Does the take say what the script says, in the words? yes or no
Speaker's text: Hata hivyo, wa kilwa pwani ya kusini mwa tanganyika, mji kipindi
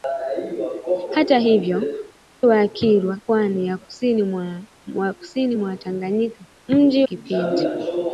yes